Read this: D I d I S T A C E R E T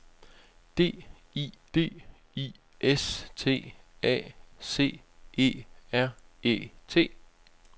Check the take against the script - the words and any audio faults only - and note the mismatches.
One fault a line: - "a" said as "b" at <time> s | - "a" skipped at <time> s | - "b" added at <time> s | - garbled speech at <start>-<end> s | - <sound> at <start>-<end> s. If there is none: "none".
none